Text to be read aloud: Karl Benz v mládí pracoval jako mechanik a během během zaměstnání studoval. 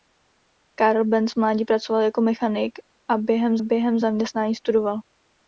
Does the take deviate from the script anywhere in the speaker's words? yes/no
no